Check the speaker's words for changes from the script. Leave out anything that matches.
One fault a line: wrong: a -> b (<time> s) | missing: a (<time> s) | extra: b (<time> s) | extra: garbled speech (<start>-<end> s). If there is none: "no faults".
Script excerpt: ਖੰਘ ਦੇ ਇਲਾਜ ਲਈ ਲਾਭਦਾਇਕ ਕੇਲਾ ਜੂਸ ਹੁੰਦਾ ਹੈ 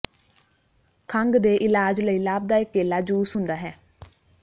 no faults